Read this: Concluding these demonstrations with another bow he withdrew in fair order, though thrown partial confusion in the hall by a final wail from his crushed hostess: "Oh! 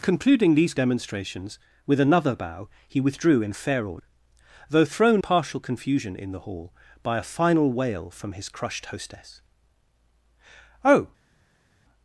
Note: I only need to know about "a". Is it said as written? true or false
true